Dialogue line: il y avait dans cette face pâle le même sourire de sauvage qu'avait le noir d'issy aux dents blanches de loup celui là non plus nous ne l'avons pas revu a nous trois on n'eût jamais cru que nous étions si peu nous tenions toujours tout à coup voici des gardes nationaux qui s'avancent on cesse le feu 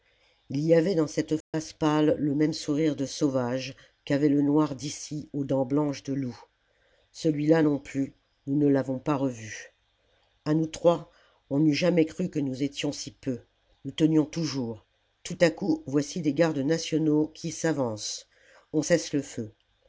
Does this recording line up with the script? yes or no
yes